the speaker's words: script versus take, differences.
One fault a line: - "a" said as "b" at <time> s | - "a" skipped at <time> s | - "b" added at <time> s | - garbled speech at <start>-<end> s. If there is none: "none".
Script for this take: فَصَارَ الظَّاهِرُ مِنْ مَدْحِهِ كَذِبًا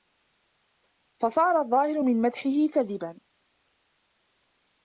none